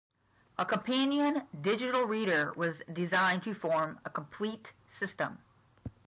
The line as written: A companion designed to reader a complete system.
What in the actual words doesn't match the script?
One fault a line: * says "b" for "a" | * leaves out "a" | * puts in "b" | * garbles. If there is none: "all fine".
* puts in "digital reader was"
* says "form" for "reader"